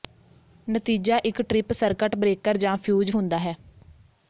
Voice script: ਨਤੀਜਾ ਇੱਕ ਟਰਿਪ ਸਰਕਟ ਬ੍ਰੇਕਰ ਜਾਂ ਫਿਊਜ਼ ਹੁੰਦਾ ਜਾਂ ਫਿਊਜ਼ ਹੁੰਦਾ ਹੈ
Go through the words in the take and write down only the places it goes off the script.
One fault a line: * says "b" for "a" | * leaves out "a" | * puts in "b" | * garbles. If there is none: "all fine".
* leaves out "ਜਾਂ ਫਿਊਜ਼ ਹੁੰਦਾ"